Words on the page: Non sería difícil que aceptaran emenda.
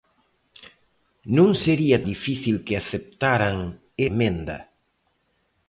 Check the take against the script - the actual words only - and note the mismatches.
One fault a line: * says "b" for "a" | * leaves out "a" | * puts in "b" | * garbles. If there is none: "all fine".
all fine